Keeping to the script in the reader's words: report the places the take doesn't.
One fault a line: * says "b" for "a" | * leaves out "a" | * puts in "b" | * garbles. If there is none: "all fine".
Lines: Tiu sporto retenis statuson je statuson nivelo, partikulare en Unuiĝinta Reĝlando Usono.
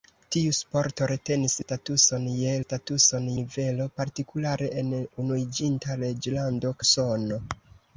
all fine